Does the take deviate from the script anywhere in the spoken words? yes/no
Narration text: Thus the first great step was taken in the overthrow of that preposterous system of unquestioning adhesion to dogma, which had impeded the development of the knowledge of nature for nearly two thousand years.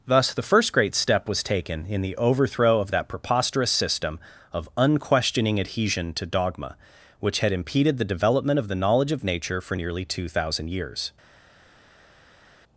no